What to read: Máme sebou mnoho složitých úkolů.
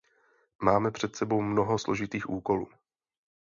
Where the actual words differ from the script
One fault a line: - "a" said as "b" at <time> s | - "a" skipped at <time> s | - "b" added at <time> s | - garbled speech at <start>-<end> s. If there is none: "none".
- "před" added at 0.9 s